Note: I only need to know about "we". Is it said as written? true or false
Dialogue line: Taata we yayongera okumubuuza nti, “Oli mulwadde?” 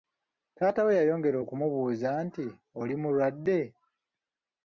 true